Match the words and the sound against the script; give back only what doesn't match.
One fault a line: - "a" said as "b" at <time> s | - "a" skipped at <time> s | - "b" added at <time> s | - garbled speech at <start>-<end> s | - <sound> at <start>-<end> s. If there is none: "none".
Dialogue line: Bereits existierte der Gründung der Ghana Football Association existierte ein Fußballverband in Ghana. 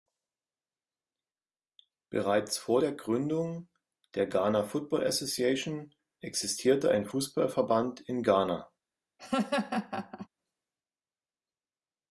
- "existierte" said as "vor" at 2.6 s
- laugh at 9.2-10.3 s